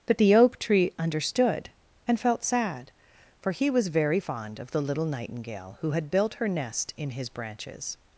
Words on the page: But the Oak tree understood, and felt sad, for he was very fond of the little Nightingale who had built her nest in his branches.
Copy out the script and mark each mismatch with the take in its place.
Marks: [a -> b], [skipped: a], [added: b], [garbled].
But the Oak tree understood, and felt sad, for he was very fond of the little Nightingale who had built her nest in his branches.